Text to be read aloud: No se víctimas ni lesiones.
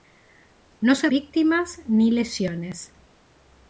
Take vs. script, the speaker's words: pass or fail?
pass